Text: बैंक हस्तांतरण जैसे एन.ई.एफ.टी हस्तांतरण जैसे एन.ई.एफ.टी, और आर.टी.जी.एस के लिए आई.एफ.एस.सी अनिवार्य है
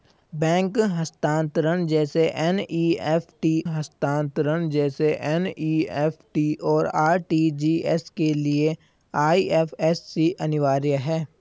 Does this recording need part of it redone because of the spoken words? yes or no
no